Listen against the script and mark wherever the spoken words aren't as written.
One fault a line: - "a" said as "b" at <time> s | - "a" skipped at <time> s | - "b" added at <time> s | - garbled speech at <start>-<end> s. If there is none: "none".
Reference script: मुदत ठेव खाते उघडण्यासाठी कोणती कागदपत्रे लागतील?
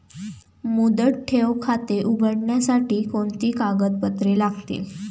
none